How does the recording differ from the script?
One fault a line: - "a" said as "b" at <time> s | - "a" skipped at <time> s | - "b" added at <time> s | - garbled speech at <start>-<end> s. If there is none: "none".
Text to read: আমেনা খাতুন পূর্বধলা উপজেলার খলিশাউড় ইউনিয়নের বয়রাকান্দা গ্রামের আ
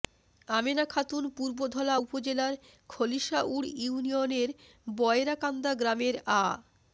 none